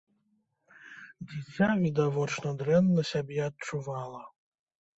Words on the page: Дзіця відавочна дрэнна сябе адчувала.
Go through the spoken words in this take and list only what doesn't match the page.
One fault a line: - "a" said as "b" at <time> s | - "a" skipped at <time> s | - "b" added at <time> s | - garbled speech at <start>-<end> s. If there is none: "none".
none